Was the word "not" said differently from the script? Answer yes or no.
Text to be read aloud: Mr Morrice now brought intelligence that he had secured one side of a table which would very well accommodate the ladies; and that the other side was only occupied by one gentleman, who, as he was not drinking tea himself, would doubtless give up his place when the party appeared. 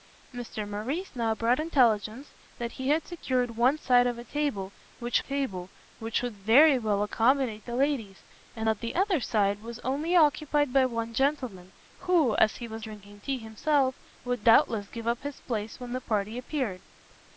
yes